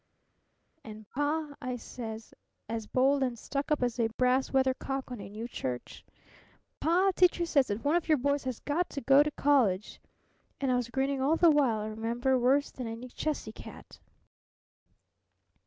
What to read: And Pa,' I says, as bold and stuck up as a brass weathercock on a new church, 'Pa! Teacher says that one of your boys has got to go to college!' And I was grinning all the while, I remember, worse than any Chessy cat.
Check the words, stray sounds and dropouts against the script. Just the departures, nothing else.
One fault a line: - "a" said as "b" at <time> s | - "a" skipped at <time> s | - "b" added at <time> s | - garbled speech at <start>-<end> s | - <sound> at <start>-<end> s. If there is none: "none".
none